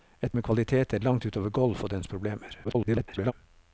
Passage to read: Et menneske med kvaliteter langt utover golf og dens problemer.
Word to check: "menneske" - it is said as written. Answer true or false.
false